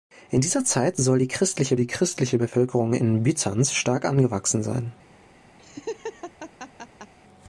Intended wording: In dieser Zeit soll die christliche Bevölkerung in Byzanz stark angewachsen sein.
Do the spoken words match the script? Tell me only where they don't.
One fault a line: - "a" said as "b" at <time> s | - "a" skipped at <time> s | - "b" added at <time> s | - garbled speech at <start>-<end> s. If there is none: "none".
- "die christliche" added at 1.8 s